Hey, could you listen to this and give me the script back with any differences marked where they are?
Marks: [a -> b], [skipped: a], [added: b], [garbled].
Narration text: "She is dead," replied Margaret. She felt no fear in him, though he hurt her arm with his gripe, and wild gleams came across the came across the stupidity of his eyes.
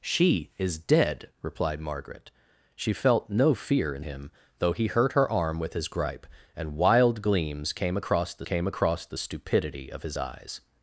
"She is dead," replied Margaret. She felt no fear in him, though he hurt her arm with his gripe, and wild gleams came across the came across the stupidity of his eyes.